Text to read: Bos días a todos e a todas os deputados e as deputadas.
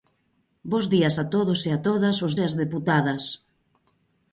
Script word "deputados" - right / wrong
wrong